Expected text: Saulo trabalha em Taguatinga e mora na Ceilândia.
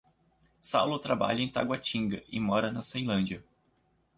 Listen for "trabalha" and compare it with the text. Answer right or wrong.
right